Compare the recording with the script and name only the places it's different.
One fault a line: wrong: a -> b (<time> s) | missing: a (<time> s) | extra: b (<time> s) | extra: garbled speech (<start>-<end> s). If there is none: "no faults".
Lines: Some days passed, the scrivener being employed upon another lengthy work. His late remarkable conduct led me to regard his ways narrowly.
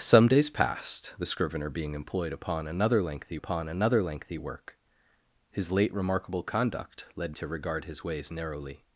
extra: upon another lengthy (3.4 s)
missing: me (7.4 s)